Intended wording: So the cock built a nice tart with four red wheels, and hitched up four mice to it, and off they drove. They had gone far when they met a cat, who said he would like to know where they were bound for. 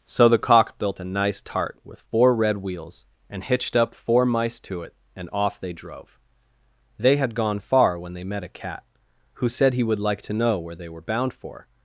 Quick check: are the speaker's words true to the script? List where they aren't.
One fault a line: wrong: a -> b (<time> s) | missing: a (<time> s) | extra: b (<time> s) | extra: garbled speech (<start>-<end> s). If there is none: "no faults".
no faults